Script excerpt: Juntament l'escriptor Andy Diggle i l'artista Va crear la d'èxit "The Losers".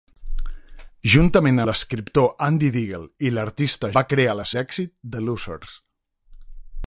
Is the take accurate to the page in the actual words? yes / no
yes